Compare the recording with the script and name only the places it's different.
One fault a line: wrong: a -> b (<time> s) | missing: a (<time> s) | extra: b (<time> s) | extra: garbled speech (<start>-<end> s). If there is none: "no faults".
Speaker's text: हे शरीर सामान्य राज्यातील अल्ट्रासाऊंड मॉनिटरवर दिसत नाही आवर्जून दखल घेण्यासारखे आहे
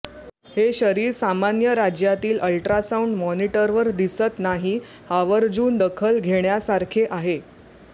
no faults